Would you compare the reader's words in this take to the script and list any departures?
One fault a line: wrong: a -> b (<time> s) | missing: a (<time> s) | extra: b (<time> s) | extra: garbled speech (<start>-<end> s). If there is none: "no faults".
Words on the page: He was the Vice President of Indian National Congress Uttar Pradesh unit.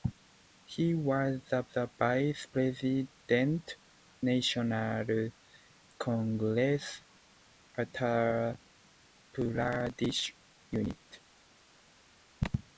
extra: the (1.7 s)
missing: of Indian (3.7 s)